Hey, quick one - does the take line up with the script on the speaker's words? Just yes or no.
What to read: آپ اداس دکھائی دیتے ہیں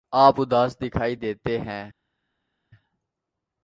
yes